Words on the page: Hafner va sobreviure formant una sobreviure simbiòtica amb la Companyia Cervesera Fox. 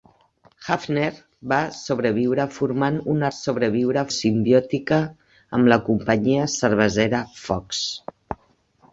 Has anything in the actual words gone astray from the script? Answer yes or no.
no